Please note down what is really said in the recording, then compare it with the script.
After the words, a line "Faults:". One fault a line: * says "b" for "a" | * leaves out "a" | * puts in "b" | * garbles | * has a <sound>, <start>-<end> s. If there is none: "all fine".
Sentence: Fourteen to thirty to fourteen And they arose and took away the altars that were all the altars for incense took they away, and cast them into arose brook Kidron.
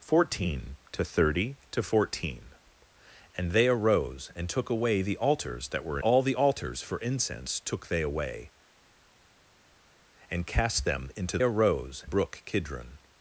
Fourteen to thirty to fourteen And they arose and took away the altars that were all the altars for incense took they away, and cast them into arose brook Kidron.
Faults:
all fine